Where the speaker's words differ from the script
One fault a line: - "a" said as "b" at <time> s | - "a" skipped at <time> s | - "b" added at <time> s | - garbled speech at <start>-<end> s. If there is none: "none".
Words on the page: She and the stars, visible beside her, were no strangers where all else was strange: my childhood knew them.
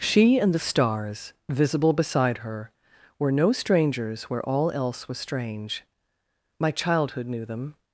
none